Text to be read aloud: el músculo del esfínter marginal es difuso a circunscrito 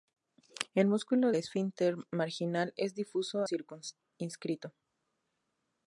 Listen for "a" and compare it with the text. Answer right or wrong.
wrong